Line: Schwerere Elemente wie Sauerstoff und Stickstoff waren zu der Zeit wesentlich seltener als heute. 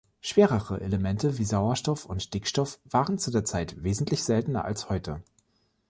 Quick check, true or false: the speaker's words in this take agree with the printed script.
true